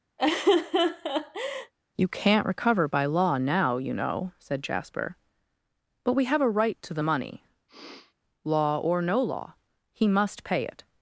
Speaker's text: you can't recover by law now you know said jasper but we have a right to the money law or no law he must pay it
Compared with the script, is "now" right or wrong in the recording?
right